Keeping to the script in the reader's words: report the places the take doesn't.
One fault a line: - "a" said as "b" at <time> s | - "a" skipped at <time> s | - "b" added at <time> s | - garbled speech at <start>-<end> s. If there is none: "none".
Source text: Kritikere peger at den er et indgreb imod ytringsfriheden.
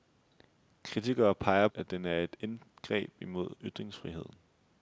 none